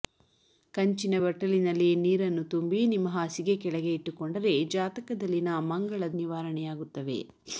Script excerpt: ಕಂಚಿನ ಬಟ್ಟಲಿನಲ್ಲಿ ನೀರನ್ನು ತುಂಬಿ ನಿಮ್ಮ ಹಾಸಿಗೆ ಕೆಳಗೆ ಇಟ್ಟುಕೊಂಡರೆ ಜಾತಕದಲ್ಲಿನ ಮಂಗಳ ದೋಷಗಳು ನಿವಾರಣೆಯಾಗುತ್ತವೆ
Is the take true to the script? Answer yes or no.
no